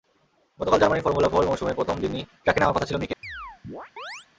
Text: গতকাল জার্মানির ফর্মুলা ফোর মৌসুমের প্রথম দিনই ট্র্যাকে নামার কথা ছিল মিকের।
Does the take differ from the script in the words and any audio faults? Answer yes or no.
yes